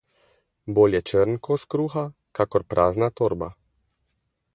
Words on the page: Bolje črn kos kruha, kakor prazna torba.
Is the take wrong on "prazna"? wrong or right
right